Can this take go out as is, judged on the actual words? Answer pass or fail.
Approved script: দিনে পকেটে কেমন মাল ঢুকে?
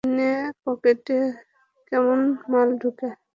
pass